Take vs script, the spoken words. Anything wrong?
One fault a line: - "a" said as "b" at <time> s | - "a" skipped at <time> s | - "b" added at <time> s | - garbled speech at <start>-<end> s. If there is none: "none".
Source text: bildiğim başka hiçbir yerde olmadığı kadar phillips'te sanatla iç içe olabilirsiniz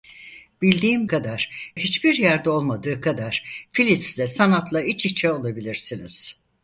- "başka" said as "kadar" at 1.1 s